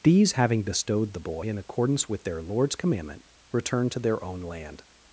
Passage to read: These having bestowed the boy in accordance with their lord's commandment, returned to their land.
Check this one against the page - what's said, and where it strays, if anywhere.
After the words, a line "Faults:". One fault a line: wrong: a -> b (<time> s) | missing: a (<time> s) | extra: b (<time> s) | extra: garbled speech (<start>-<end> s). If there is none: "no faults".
These having bestowed the boy in accordance with their lord's commandment, returned to their own land.
Faults:
extra: own (4.2 s)